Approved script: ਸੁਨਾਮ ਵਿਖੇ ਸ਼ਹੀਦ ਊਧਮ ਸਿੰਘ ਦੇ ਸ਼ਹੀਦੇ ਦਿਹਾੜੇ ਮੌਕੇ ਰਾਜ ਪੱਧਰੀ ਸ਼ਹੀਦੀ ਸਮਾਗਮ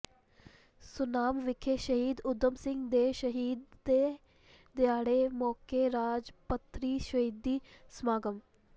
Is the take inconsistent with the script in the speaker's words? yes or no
no